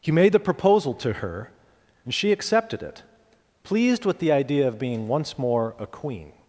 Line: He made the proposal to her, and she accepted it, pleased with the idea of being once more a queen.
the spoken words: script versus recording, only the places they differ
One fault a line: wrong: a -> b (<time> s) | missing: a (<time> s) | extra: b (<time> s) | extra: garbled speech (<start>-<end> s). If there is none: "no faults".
no faults